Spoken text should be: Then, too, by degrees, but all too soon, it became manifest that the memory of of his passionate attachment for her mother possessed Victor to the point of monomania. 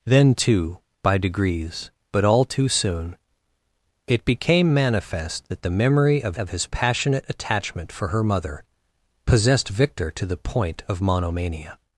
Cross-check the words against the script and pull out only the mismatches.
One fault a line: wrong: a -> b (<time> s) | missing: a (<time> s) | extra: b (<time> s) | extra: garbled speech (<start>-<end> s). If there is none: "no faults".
no faults